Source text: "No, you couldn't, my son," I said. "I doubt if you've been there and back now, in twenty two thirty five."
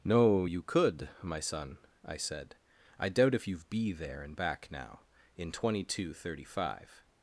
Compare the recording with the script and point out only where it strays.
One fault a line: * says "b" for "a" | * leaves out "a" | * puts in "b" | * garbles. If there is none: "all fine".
* says "could" for "couldn't"
* says "be" for "been"